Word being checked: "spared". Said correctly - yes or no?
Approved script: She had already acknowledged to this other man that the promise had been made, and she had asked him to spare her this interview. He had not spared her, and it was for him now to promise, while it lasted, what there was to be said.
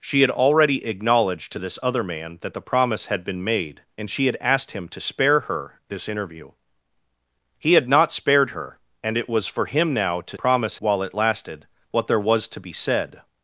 yes